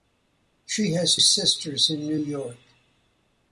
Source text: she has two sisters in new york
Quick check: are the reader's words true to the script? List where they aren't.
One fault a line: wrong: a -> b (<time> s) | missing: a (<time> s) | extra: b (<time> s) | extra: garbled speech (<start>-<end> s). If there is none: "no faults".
missing: two (1.1 s)